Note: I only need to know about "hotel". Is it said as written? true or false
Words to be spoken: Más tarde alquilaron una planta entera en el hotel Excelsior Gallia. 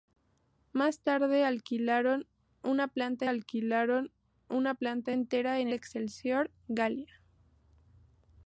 false